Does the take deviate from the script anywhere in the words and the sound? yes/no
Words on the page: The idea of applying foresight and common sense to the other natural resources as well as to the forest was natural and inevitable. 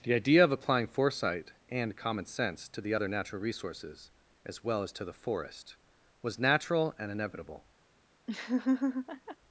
yes